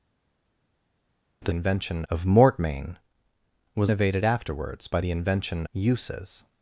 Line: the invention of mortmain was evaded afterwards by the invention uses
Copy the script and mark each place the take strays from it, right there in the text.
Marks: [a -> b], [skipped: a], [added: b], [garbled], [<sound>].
the invention of mortmain was evaded afterwards by the invention uses